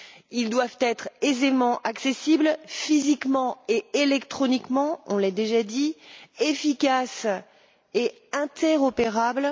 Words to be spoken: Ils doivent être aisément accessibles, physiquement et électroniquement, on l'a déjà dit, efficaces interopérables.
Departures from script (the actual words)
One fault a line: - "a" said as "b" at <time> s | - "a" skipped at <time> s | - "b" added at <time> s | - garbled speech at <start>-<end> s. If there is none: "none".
- "et" added at 7.9 s